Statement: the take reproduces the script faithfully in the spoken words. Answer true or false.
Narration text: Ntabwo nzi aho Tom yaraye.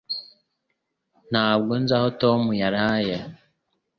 true